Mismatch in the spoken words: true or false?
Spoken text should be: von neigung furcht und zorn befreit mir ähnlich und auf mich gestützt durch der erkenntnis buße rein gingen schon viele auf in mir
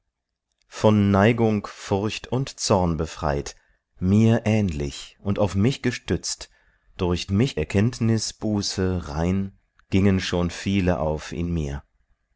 true